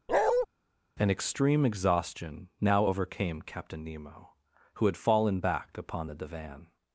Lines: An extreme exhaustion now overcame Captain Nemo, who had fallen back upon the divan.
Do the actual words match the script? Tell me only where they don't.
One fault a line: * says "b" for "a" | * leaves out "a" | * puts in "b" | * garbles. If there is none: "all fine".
all fine